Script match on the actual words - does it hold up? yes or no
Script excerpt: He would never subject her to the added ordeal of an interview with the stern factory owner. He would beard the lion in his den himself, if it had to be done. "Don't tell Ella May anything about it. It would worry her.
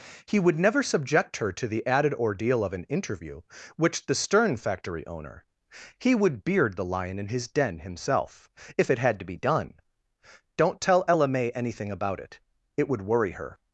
no